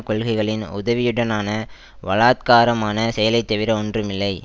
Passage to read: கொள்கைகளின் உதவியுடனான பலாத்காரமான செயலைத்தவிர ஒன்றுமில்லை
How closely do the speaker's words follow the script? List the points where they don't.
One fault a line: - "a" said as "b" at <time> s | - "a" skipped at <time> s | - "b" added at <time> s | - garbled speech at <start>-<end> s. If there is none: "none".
none